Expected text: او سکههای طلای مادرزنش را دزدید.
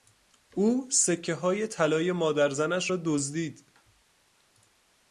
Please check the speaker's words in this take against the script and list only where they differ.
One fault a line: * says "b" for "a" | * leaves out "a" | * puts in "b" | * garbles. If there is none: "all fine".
all fine